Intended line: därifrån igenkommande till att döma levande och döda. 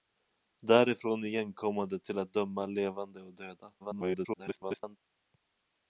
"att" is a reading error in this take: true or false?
false